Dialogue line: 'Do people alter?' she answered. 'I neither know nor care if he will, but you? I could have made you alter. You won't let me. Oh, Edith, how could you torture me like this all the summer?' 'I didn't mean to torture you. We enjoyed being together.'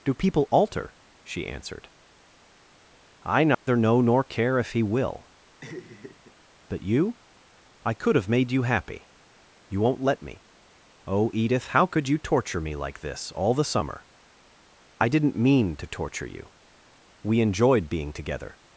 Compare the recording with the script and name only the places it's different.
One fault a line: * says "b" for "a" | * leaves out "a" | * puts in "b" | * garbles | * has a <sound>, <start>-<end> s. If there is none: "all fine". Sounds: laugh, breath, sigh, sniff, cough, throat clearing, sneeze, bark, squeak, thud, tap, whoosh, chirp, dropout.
* has a dropout, 3.5-3.7 s
* has a laugh, 5.6-6.3 s
* says "happy" for "alter"